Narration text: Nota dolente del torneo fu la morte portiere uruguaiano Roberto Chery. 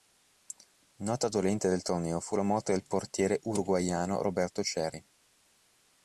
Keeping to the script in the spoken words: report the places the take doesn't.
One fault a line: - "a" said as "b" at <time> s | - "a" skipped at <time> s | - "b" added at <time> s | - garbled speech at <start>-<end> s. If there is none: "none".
- "del" added at 2.7 s